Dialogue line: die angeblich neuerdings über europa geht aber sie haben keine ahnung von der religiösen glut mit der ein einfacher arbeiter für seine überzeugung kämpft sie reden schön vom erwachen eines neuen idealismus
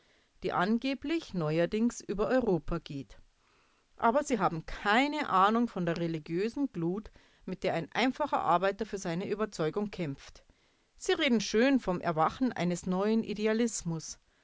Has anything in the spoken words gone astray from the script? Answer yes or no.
no